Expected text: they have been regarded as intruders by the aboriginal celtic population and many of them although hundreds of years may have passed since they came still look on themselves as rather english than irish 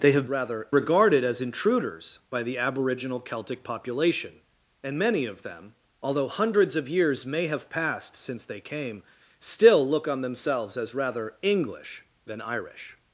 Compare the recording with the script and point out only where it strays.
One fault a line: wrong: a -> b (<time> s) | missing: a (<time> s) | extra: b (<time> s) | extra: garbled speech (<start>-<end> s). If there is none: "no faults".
wrong: been -> rather (0.3 s)